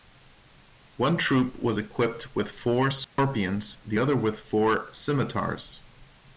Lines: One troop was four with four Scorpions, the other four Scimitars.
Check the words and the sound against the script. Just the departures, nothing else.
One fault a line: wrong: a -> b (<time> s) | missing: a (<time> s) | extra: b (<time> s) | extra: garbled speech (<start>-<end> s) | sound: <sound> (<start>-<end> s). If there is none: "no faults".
wrong: four -> equipped (1.8 s)
sound: dropout (3.0-3.2 s)
extra: with (4.2 s)